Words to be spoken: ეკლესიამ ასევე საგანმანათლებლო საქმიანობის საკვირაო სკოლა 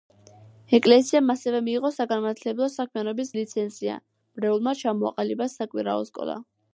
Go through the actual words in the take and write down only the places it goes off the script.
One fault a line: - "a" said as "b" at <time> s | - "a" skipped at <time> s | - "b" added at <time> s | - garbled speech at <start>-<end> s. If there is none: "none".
- "მიიღო" added at 1.7 s
- "ლიცენზია მრევლმა ჩამოაყალიბა" added at 3.4 s